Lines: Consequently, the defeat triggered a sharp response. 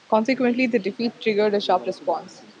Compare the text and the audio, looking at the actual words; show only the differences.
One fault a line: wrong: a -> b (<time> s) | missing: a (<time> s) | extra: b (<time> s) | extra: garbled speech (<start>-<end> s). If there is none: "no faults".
no faults